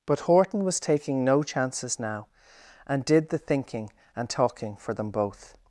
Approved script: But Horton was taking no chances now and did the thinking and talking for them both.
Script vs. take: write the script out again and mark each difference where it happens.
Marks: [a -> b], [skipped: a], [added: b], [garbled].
But Horton was taking no chances now and did the thinking and talking for them both.